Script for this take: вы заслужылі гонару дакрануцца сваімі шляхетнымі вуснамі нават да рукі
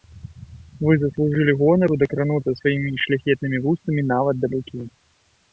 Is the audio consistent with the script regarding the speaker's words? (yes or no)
yes